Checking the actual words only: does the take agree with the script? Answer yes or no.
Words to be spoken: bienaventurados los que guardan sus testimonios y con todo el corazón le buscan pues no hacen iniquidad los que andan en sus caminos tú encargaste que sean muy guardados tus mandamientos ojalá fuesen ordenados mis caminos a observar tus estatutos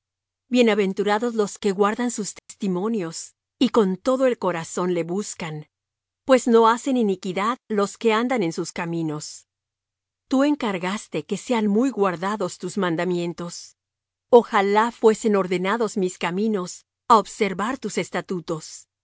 yes